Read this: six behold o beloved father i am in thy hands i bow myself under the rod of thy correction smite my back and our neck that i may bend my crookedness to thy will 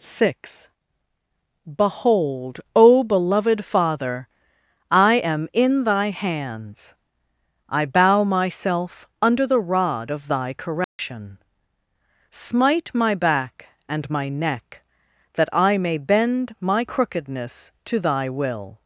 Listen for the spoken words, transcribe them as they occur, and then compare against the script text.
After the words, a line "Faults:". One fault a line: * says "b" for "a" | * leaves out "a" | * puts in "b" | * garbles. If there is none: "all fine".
six behold o beloved father i am in thy hands i bow myself under the rod of thy correction smite my back and my neck that i may bend my crookedness to thy will
Faults:
* says "my" for "our"